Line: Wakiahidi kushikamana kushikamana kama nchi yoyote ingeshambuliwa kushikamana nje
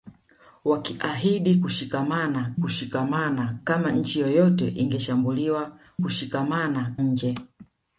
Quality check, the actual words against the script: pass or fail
pass